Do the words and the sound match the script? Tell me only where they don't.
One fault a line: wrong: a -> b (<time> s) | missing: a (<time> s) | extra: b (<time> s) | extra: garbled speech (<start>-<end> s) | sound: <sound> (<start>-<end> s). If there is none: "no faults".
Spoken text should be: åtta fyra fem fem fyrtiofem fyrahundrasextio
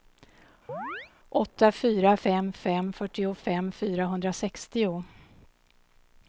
sound: chirp (0.7-1.1 s)